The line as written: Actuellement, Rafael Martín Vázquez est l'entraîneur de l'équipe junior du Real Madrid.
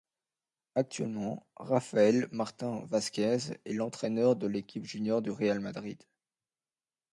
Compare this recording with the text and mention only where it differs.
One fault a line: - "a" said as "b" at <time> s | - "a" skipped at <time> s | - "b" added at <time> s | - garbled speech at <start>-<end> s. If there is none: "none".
none